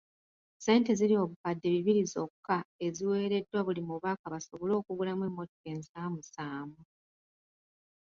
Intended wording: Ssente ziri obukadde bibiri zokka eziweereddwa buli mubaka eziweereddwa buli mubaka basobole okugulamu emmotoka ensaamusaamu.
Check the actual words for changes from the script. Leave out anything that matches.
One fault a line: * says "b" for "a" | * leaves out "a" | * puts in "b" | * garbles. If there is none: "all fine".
* leaves out "eziweereddwa buli mubaka"